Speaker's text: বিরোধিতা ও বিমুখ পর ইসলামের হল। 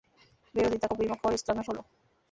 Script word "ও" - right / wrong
right